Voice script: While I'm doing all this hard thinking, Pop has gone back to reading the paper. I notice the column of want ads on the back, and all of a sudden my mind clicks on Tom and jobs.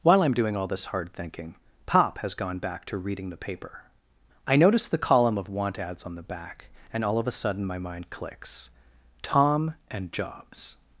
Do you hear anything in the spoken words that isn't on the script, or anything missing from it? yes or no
yes